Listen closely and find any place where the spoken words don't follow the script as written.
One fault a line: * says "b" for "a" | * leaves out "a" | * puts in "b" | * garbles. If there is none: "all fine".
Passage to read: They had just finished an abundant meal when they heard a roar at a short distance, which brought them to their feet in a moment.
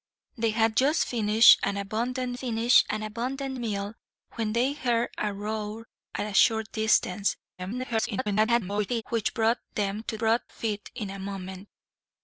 * puts in "finished an abundant"
* garbles
* says "brought" for "their"